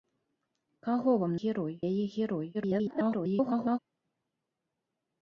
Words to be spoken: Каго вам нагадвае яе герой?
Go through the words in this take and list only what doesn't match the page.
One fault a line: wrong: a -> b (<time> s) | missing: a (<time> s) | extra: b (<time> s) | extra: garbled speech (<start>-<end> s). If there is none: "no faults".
wrong: нагадвае -> герой (1.4 s)
extra: garbled speech (2.5-3.8 s)